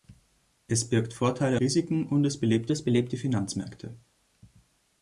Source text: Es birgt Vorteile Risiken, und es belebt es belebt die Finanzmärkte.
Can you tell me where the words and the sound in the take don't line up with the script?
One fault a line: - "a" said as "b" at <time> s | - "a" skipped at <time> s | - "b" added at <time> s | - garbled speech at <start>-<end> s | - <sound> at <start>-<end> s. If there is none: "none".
none